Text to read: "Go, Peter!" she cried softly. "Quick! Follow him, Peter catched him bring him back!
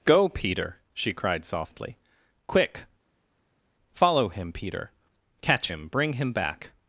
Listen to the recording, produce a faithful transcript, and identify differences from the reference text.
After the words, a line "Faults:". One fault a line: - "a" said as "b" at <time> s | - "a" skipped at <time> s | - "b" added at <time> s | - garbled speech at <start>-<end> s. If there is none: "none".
"Go, Peter!" she cried softly. "Quick! Follow him, Peter catch him bring him back!
Faults:
- "catched" said as "catch" at 5.4 s